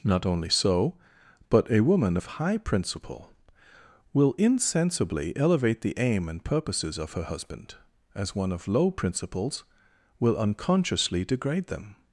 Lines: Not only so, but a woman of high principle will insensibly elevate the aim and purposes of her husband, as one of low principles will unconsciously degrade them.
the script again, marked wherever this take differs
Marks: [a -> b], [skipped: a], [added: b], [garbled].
Not only so, but a woman of high principle will insensibly elevate the aim and purposes of her husband, as one of low principles will unconsciously degrade them.